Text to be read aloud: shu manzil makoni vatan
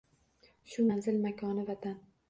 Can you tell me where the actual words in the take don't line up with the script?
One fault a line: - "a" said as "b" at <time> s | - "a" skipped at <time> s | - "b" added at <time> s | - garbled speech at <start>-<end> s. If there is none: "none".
none